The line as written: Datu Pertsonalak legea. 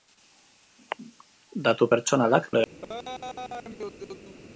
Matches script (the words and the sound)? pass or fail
fail